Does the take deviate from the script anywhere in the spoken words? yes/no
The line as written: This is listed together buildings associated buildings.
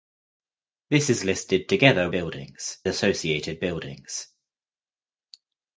no